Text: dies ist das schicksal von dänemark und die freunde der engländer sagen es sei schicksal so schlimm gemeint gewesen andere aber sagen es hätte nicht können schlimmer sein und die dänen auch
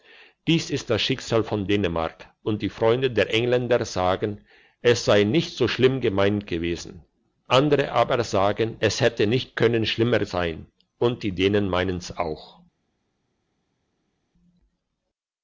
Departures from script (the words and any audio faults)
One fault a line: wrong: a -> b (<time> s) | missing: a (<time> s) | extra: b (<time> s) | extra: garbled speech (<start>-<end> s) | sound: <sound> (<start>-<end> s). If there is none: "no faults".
wrong: schicksal -> nicht (5.2 s)
extra: meinen's (11.7 s)